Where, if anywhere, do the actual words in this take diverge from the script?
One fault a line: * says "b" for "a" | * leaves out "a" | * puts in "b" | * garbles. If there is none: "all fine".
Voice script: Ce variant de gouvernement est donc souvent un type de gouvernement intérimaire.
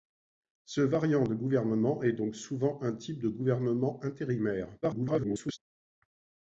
* garbles